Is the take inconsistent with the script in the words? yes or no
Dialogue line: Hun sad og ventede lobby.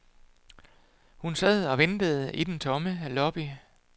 yes